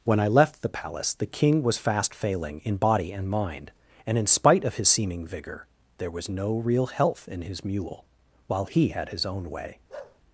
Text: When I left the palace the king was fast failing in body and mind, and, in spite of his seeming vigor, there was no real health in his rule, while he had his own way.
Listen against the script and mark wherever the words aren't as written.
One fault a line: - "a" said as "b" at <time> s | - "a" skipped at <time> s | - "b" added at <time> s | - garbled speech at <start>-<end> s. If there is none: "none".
- "rule" said as "mule" at 7.6 s